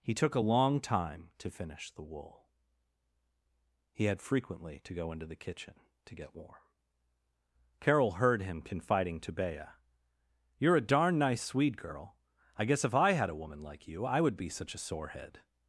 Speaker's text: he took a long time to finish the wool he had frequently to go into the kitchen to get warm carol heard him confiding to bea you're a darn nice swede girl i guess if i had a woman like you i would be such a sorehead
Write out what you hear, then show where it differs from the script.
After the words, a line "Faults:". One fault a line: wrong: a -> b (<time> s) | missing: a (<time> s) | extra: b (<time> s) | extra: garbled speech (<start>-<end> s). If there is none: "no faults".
he took a long time to finish the wool he had frequently to go into the kitchen to get warm carol heard him confiding to bea you're a darn nice swede girl i guess if i had a woman like you i would be such a sorehead
Faults:
no faults